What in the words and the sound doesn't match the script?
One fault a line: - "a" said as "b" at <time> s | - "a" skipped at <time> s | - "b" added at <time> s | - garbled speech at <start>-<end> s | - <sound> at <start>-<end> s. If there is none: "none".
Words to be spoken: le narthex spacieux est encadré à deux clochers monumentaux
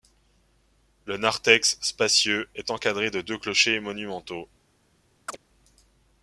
- "à" said as "de" at 3.1 s
- chirp at 5.3-5.4 s